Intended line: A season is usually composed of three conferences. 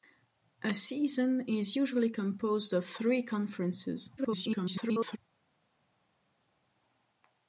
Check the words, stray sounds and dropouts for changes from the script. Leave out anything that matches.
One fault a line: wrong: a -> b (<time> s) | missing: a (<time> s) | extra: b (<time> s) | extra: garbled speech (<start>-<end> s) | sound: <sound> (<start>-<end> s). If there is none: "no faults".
extra: garbled speech (4.2-5.2 s)